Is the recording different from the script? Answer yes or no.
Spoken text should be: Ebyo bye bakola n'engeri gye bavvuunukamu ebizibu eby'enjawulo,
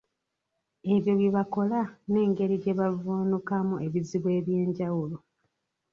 no